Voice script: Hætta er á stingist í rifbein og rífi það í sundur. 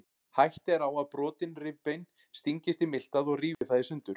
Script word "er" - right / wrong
right